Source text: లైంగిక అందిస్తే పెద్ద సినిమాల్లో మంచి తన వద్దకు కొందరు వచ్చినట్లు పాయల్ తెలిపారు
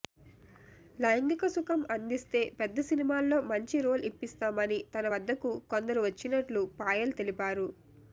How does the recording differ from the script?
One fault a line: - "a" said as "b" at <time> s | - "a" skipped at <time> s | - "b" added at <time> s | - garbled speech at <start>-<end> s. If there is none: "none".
- "సుఖం" added at 1.5 s
- "రోల్ ఇప్పిస్తామని" added at 3.8 s